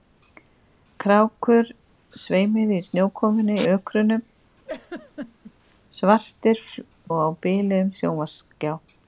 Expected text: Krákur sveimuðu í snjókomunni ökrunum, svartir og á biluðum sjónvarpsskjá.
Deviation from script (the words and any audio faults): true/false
true